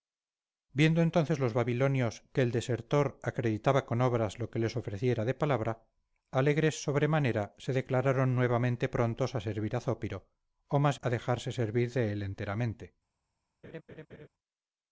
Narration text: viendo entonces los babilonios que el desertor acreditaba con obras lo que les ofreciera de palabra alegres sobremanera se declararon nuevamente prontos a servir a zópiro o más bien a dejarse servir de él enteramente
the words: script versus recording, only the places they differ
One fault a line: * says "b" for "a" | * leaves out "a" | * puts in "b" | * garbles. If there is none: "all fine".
* leaves out "bien"